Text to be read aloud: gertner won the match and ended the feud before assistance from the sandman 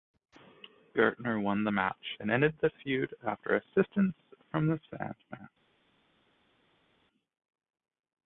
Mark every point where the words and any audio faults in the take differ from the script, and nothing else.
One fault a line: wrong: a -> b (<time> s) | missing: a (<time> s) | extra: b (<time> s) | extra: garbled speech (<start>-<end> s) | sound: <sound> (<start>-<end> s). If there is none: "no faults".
wrong: before -> after (3.3 s)